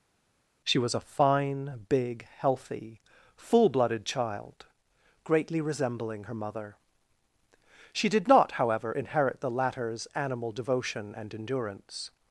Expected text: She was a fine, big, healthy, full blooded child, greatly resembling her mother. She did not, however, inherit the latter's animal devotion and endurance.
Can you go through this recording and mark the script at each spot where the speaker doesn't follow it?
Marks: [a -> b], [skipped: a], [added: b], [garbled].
She was a fine, big, healthy, full blooded child, greatly resembling her mother. She did not, however, inherit the latter's animal devotion and endurance.